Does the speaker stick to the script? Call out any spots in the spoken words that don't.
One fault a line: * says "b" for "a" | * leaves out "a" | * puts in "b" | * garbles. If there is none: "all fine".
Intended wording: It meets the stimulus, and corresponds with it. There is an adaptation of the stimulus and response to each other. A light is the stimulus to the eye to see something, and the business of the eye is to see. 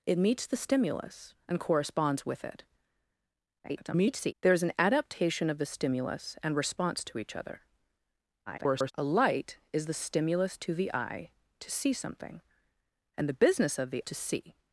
* garbles
* garbles
* leaves out "eye is"